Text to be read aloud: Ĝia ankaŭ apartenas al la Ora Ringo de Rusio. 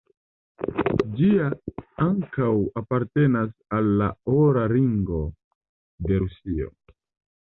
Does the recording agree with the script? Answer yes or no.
yes